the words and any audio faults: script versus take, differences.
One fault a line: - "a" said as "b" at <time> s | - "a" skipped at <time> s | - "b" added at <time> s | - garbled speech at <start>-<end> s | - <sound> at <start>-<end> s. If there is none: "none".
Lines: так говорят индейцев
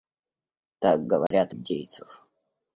- dropout at 1.3-1.3 s